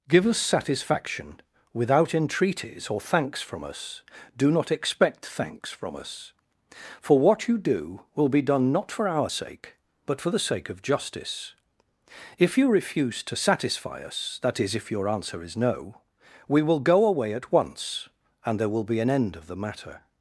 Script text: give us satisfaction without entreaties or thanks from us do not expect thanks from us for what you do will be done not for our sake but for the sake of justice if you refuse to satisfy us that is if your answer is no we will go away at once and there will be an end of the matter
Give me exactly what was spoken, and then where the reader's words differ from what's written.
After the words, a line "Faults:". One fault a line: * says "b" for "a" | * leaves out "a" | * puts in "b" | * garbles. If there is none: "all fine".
give us satisfaction without entreaties or thanks from us do not expect thanks from us for what you do will be done not for our sake but for the sake of justice if you refuse to satisfy us that is if your answer is no we will go away at once and there will be an end of the matter
Faults:
all fine